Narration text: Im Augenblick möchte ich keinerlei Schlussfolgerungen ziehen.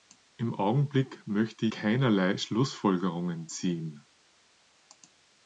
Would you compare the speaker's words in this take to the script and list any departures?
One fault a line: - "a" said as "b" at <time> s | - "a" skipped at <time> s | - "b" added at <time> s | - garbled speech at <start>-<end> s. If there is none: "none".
- "ich" skipped at 1.7 s